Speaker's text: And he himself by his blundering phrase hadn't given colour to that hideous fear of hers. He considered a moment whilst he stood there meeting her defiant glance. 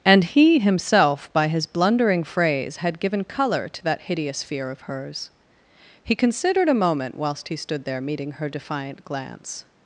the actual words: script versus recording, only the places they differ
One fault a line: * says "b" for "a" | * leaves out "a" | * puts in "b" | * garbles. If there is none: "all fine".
* says "had" for "hadn't"